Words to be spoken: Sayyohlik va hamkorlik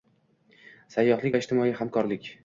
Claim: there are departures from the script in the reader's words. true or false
true